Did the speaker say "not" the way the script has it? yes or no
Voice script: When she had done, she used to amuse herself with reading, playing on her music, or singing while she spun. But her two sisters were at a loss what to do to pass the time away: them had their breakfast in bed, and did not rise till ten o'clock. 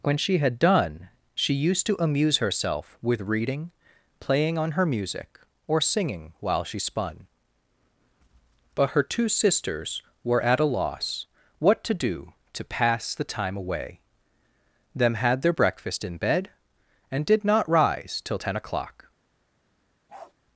yes